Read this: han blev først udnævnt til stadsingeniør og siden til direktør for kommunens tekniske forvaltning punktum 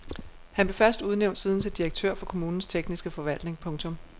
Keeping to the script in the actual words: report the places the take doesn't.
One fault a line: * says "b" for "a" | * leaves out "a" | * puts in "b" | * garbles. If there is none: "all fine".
* leaves out "til stadsingeniør og"